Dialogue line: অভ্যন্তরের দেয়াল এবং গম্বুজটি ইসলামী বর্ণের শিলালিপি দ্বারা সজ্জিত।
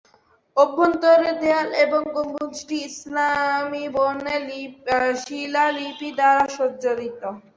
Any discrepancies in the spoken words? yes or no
no